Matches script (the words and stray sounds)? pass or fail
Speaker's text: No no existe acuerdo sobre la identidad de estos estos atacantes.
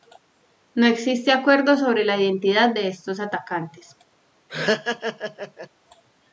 fail